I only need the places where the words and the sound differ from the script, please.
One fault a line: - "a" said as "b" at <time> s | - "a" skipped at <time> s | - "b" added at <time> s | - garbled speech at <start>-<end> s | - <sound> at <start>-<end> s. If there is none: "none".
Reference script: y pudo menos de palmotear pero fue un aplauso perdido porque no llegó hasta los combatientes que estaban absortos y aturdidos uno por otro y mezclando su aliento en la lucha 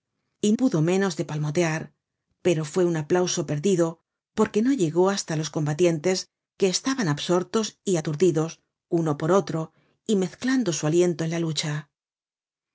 none